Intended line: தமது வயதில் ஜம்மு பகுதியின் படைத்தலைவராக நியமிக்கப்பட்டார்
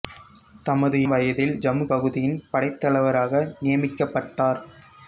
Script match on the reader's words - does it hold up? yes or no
yes